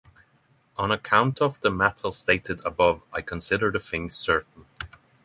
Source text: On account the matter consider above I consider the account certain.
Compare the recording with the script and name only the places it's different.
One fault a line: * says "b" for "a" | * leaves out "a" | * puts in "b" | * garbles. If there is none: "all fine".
* puts in "of"
* says "stated" for "consider"
* says "thing" for "account"